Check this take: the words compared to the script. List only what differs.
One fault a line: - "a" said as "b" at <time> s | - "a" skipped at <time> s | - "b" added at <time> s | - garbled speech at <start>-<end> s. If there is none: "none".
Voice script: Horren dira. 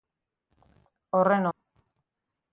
none